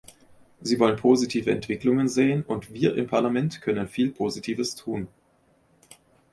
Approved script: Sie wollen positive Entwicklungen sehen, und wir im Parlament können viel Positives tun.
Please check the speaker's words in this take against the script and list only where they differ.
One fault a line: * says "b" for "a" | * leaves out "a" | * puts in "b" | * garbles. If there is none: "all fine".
all fine